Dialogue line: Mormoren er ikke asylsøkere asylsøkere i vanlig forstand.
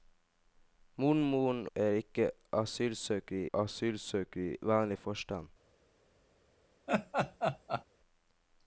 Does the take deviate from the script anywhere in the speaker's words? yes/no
no